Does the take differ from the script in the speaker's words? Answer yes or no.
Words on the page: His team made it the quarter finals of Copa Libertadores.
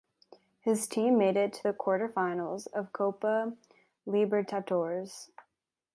yes